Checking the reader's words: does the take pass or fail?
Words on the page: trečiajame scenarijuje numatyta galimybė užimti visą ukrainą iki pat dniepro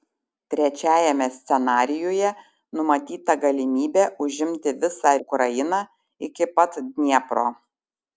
pass